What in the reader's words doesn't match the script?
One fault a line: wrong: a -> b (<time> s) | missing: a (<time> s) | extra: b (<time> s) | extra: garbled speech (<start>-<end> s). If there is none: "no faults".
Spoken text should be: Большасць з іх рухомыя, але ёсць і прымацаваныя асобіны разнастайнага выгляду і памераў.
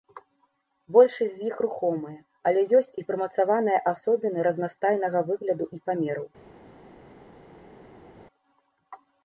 no faults